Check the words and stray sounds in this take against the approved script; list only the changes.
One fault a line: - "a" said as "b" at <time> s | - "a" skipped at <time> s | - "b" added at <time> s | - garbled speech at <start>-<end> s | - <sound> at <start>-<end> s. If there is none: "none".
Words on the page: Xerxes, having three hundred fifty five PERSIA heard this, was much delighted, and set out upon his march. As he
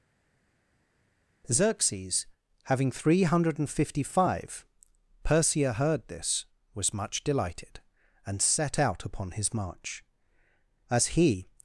none